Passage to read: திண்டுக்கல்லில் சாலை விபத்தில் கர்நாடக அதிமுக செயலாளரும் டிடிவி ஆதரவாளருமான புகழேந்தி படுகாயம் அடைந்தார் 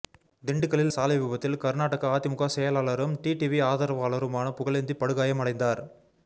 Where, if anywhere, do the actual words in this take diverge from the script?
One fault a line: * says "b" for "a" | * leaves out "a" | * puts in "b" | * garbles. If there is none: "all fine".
all fine